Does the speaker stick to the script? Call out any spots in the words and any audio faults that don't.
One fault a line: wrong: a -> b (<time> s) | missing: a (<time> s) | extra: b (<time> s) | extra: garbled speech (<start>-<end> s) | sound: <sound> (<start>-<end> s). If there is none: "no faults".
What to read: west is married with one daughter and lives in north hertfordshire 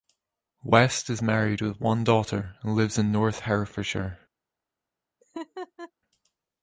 sound: laugh (5.2-5.9 s)